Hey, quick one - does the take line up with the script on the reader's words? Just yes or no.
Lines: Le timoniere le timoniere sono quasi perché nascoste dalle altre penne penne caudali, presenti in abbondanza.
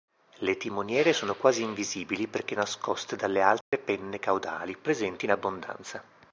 no